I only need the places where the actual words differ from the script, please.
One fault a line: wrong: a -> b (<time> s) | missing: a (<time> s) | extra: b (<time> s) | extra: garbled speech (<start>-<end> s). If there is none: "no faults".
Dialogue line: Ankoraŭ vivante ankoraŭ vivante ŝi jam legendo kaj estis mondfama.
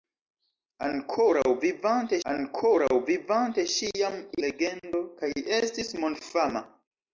no faults